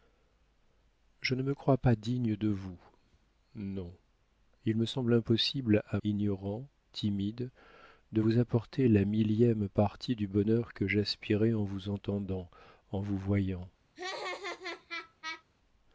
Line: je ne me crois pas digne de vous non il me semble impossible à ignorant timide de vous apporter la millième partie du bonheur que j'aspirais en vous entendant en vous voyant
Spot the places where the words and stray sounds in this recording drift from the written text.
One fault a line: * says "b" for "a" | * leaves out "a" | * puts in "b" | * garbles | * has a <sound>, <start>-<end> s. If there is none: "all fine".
* has a laugh, 14.0-15.4 s